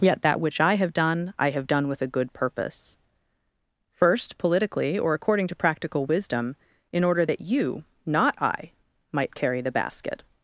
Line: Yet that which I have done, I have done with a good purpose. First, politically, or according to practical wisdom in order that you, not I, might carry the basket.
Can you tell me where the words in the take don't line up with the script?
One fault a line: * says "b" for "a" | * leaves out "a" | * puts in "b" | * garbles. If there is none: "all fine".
all fine